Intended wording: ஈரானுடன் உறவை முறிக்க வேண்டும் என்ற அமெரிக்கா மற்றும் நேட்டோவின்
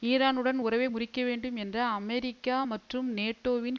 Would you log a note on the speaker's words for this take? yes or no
no